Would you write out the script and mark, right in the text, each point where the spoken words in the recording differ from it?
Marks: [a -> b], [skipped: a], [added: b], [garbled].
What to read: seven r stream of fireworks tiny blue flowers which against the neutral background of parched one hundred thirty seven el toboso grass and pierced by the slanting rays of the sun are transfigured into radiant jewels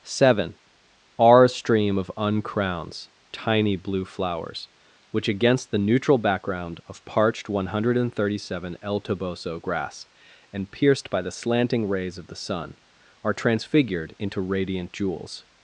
seven r stream of [fireworks -> uncrowns] tiny blue flowers which against the neutral background of parched one hundred thirty seven el toboso grass and pierced by the slanting rays of the sun are transfigured into radiant jewels